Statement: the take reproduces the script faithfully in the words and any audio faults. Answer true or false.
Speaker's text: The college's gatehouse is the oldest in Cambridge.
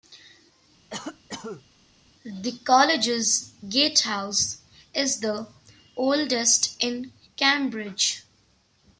false